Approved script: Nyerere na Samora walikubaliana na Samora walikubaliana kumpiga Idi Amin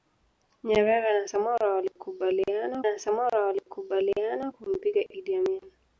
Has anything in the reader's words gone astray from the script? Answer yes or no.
no